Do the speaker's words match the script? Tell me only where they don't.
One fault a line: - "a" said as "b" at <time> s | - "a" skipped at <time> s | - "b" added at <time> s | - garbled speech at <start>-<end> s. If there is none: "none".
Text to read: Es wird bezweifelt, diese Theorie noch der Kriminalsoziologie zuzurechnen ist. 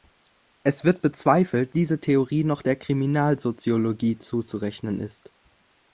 none